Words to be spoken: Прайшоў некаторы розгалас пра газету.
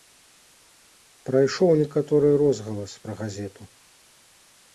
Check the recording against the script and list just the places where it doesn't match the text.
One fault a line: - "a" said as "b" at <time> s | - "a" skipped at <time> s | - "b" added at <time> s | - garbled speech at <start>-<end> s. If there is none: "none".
none